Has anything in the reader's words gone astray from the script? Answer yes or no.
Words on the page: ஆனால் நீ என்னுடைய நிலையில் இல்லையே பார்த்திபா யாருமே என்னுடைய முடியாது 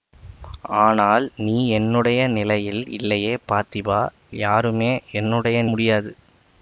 no